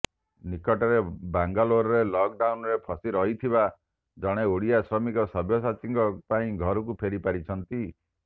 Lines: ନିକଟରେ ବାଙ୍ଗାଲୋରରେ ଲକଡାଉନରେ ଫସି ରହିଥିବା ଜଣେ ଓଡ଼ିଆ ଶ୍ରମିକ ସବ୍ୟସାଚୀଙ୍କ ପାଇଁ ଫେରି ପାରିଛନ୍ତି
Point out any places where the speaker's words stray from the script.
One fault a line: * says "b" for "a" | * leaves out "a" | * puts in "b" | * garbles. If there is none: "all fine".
* puts in "ଘରକୁ"